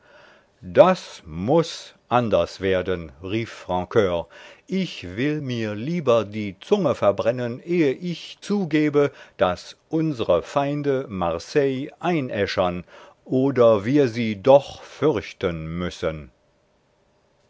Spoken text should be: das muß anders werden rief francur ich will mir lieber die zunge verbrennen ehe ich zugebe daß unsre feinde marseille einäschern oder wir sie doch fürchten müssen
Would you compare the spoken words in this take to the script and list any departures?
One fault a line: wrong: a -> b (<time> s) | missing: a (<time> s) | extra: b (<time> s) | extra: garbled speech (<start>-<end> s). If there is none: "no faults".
no faults